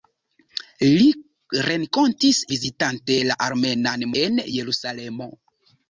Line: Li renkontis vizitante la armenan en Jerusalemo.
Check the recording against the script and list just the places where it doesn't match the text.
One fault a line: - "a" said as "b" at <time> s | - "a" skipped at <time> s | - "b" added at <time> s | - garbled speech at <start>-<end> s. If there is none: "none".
none